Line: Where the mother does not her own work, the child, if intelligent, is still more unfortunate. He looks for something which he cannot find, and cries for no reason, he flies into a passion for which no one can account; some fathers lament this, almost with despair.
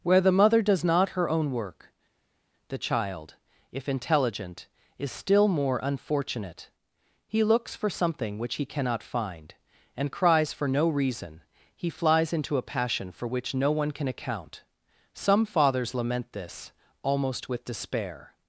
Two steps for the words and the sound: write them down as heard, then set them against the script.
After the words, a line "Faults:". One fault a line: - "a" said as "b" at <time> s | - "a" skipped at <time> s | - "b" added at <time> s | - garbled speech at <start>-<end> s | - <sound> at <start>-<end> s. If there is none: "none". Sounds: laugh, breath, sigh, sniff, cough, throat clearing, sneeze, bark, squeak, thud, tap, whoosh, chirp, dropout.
Where the mother does not her own work, the child, if intelligent, is still more unfortunate. He looks for something which he cannot find, and cries for no reason, he flies into a passion for which no one can account; some fathers lament this, almost with despair.
Faults:
none